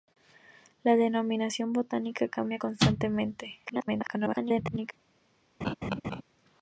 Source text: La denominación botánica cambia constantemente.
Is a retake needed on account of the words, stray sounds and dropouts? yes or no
yes